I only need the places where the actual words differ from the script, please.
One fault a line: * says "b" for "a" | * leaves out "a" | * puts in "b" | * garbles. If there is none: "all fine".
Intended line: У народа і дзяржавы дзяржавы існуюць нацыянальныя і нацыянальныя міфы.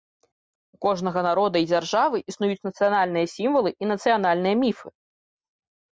* puts in "кожнага"
* leaves out "дзяржавы"
* puts in "сімвалы"